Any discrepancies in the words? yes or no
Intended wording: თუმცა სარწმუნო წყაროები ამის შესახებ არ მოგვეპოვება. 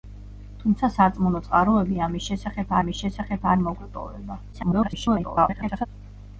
yes